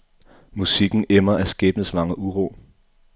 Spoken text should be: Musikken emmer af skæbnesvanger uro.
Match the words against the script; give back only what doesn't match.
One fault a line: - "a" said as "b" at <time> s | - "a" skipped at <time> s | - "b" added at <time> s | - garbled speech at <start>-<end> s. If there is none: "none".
none